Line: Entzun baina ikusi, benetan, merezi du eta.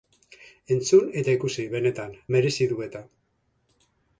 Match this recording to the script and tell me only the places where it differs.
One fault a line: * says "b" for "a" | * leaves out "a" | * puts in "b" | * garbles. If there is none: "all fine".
* says "eta" for "baina"